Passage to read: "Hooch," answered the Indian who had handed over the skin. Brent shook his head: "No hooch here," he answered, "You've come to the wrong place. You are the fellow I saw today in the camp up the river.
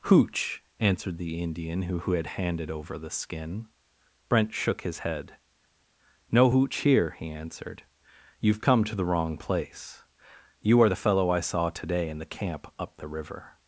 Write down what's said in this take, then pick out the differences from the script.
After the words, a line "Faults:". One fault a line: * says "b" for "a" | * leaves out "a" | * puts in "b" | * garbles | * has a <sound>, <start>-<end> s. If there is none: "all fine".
"Hooch," answered the Indian who who had handed over the skin. Brent shook his head: "No hooch here," he answered, "You've come to the wrong place. You are the fellow I saw today in the camp up the river.
Faults:
* puts in "who"